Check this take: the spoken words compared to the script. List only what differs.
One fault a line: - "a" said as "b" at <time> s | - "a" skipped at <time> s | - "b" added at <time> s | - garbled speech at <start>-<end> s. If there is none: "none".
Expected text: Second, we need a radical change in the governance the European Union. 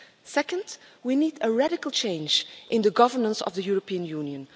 - "of" added at 3.4 s